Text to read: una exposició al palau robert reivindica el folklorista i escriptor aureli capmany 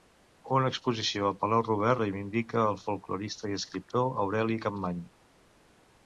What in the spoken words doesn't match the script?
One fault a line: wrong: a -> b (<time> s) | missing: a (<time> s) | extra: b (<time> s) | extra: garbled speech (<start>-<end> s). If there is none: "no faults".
no faults